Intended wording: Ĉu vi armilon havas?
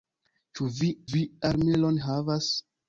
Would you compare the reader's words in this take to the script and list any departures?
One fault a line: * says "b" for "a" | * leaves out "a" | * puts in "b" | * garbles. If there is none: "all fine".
* puts in "vi"